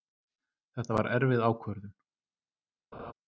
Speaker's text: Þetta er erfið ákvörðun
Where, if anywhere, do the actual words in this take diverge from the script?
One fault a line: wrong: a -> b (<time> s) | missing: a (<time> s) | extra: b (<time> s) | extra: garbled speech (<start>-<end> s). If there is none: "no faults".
wrong: er -> var (1.0 s)